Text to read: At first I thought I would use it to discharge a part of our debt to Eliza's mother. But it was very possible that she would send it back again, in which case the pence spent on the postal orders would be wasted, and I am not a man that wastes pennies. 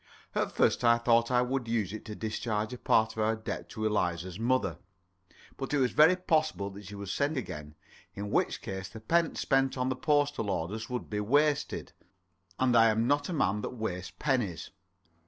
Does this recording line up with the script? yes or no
no